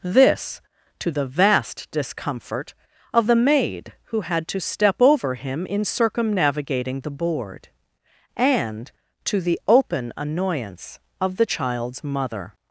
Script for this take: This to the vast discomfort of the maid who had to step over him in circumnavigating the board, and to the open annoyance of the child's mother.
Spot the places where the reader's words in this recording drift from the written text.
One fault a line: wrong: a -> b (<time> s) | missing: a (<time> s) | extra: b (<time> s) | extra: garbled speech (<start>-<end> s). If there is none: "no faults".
no faults